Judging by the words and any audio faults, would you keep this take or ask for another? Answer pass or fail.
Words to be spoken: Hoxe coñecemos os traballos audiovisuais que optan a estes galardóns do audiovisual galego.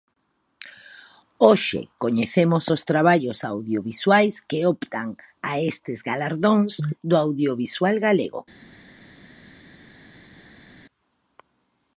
pass